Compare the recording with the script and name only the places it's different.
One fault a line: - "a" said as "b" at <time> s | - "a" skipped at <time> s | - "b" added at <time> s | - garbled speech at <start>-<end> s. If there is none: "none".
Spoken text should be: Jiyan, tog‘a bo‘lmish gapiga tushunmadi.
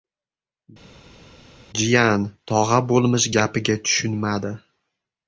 none